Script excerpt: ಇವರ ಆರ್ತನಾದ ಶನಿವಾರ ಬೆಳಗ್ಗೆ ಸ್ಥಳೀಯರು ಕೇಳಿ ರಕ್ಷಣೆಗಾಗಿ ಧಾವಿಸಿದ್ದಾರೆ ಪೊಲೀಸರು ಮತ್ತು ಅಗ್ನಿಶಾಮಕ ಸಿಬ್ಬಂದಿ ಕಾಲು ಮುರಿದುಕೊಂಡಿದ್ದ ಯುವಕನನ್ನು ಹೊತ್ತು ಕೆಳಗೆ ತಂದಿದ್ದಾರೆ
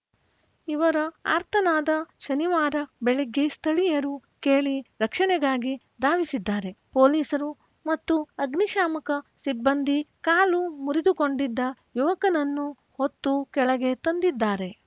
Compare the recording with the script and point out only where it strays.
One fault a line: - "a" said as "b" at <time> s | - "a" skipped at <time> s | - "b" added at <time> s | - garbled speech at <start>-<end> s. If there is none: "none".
none